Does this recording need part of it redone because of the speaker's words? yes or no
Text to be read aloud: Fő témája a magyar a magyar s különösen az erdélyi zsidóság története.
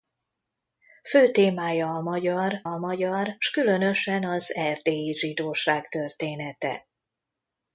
no